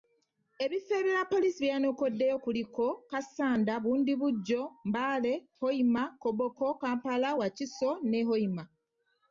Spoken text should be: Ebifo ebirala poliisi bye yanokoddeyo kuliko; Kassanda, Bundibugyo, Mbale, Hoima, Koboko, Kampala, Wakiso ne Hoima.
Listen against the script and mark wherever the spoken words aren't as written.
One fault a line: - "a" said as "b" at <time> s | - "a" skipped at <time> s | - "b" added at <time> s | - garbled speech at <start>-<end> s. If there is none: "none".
none